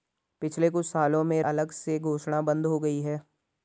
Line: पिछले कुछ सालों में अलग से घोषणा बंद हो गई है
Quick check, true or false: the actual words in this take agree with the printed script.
true